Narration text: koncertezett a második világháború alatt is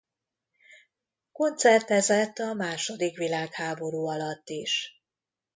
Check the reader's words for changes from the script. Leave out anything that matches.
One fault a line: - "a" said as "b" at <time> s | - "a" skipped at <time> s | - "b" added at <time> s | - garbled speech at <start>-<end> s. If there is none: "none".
none